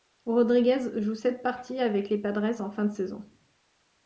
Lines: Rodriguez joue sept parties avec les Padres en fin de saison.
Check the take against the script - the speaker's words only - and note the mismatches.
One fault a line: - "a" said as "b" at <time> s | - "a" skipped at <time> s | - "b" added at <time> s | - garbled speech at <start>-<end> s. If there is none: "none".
none